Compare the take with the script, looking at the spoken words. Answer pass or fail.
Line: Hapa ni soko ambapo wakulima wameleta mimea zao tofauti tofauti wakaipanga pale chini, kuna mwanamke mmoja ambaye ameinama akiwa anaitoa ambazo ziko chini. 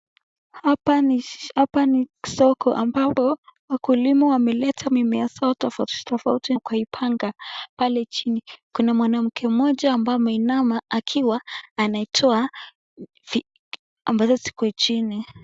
pass